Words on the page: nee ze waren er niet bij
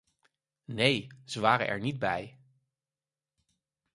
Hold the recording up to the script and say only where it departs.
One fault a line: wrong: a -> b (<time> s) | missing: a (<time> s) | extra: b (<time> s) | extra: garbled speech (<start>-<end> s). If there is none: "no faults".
no faults